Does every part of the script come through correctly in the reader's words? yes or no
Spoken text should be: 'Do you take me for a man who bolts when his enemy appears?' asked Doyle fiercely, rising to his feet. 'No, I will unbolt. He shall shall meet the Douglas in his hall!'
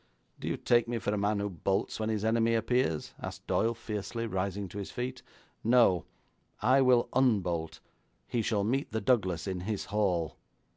no